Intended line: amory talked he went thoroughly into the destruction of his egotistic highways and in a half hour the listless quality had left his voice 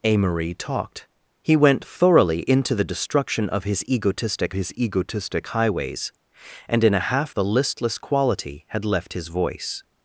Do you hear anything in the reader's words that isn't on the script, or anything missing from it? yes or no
yes